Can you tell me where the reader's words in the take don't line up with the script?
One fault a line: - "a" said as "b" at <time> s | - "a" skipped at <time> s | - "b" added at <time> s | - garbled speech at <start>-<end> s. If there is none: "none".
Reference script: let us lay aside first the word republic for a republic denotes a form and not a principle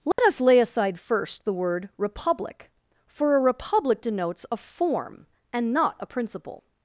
none